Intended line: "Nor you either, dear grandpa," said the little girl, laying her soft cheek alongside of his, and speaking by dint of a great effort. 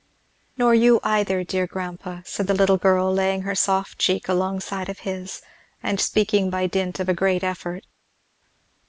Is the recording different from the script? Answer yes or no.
no